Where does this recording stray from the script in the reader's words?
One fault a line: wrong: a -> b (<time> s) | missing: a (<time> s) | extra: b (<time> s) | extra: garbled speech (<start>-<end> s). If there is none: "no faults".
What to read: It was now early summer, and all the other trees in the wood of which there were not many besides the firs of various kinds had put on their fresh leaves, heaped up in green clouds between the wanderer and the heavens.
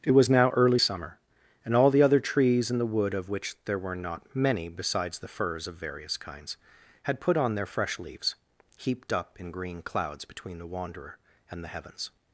no faults